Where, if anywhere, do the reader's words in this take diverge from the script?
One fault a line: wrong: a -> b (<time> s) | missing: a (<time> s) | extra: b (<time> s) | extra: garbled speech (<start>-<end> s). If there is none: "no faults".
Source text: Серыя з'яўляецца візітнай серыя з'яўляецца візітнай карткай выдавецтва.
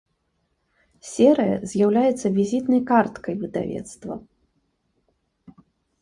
missing: серыя з'яўляецца візітнай (2.8 s)